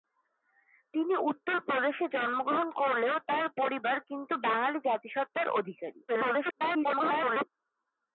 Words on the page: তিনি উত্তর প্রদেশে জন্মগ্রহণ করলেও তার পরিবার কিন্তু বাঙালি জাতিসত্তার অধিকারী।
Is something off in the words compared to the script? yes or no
yes